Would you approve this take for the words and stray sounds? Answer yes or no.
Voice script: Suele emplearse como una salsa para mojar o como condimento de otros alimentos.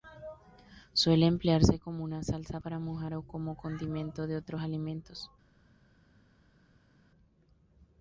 yes